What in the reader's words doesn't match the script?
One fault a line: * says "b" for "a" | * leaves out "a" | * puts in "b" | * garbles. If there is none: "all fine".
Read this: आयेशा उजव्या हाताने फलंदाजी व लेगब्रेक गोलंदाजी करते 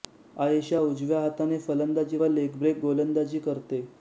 all fine